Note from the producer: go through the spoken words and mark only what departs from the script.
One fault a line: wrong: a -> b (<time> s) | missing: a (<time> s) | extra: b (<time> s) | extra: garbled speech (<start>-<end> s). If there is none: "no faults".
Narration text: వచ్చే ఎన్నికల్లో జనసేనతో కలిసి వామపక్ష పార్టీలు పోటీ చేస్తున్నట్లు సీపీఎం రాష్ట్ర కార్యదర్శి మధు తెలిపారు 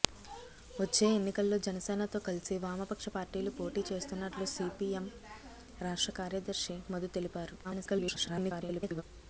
extra: garbled speech (7.6-9.0 s)